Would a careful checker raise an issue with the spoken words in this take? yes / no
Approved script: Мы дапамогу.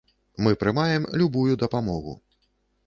yes